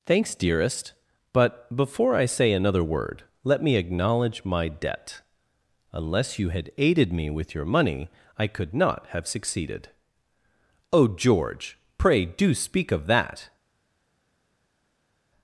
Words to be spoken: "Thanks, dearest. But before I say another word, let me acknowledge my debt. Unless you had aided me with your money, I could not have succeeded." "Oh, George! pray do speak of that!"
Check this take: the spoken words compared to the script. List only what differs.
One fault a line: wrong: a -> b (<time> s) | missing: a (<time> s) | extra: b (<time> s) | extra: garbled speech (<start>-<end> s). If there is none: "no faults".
no faults